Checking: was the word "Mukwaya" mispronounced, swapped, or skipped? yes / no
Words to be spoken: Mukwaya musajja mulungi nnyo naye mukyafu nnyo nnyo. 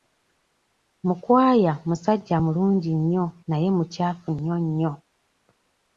no